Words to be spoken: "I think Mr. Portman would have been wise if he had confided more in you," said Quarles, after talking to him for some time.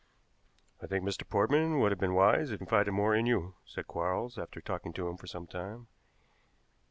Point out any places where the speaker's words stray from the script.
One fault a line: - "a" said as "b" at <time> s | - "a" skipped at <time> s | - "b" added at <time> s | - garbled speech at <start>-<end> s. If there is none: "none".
- "he had" skipped at 2.6 s